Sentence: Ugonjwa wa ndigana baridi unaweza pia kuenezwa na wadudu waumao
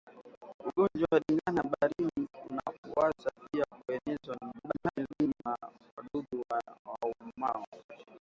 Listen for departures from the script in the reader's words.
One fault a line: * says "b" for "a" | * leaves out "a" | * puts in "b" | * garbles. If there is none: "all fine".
* garbles